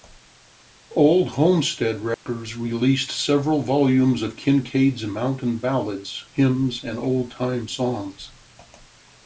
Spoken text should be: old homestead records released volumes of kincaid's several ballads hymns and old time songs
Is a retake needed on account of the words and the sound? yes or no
yes